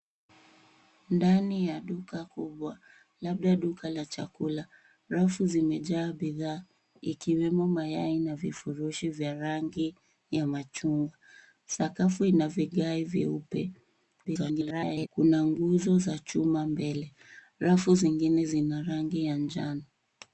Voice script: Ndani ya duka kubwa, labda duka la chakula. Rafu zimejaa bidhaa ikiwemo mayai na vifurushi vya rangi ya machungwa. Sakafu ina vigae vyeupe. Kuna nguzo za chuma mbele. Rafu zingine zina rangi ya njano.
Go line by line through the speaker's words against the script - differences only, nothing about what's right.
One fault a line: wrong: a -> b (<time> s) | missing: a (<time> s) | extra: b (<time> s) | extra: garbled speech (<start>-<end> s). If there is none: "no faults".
extra: garbled speech (14.2-15.1 s)